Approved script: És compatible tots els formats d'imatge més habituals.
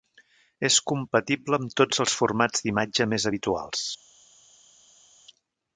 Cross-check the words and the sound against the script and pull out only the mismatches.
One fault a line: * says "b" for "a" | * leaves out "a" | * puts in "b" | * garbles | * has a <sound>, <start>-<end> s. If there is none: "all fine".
* puts in "amb"